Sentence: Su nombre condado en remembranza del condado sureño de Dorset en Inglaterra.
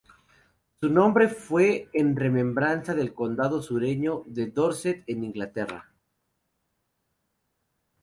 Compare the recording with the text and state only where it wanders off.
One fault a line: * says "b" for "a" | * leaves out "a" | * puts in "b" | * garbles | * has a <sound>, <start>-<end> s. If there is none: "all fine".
* says "fue" for "condado"